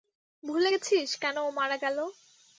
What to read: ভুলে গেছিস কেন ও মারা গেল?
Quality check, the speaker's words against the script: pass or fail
pass